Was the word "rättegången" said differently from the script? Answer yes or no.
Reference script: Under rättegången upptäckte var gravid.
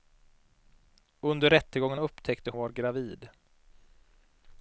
no